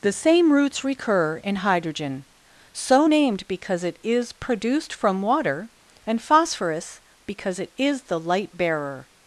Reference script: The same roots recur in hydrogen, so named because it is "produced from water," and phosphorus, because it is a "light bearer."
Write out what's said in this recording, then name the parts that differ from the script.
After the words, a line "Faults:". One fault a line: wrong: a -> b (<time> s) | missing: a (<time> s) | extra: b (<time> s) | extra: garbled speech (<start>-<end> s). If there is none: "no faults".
The same roots recur in hydrogen, so named because it is "produced from water," and phosphorus, because it is the "light bearer."
Faults:
wrong: a -> the (8.0 s)